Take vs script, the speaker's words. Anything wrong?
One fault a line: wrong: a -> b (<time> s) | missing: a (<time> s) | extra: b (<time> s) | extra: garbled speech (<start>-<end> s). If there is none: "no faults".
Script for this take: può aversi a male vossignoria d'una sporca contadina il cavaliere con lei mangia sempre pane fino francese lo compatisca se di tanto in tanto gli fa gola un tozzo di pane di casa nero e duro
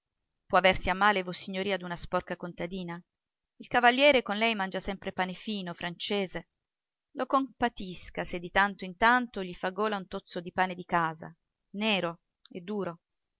no faults